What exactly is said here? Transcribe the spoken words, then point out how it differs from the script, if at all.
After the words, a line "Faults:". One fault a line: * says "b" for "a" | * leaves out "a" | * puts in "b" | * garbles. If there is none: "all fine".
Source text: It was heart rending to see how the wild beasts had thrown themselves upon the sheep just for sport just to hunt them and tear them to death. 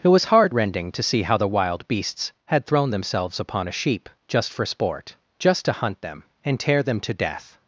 It was heart rending to see how the wild beasts had thrown themselves upon a sheep just for sport just to hunt them and tear them to death.
Faults:
* says "a" for "the"